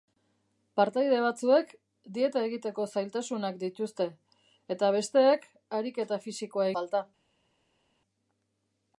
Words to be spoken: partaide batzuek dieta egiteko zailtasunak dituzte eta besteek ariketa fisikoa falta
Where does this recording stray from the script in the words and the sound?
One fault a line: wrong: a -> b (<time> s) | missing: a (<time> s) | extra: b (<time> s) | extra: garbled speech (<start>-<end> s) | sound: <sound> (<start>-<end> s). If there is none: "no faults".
no faults